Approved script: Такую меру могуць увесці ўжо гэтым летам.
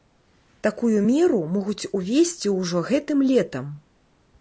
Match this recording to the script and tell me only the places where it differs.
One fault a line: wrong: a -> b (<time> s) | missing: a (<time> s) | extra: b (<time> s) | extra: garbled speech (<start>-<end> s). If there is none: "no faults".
no faults